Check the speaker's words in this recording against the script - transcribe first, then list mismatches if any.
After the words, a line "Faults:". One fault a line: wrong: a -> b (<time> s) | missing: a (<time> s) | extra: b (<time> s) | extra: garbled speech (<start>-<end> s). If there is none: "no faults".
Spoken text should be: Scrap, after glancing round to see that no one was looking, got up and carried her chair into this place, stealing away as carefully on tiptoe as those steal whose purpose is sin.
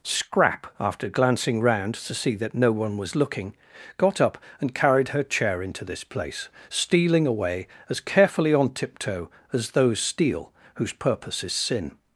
Scrap, after glancing round to see that no one was looking, got up and carried her chair into this place, stealing away as carefully on tiptoe as those steal whose purpose is sin.
Faults:
no faults